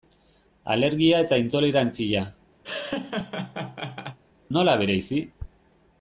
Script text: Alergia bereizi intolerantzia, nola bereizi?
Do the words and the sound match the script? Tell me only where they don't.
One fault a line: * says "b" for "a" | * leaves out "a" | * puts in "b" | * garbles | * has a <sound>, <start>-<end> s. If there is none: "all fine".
* says "eta" for "bereizi"
* has a laugh, 2.6-4.2 s